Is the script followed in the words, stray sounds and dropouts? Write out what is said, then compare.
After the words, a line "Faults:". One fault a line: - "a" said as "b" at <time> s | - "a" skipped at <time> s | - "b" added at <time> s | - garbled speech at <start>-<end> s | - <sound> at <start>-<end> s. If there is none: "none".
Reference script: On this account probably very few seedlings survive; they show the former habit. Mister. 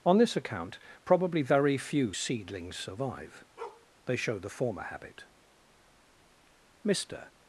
On this account probably very few seedlings survive; they show the former habit. Mister.
Faults:
- bark at 3.6-3.9 s